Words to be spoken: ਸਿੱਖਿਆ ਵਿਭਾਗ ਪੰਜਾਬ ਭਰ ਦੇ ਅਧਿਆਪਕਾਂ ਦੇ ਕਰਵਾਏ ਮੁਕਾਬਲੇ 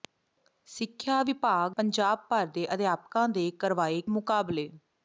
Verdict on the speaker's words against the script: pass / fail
pass